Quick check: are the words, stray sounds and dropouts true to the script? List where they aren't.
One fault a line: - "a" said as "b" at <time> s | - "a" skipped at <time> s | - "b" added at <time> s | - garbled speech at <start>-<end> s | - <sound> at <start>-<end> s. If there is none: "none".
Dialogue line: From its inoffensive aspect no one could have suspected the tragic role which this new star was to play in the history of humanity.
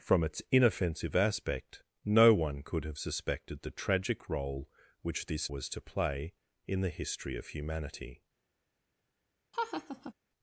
- "new star" skipped at 5.5 s
- laugh at 9.5-10.1 s